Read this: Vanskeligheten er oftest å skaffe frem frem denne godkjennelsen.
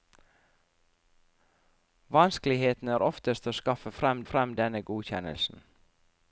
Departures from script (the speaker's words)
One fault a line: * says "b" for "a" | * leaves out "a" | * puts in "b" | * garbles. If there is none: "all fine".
all fine